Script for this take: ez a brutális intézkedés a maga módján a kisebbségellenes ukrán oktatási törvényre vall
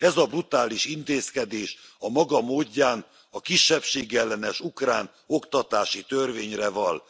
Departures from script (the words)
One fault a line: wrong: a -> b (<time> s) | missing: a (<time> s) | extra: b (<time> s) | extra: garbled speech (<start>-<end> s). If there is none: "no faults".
no faults